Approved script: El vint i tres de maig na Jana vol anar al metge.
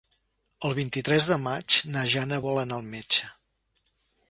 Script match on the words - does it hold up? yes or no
yes